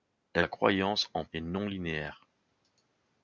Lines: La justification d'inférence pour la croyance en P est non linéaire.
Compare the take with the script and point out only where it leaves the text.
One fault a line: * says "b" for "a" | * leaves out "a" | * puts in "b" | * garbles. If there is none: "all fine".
* leaves out "justification d'inférence pour"
* leaves out "P"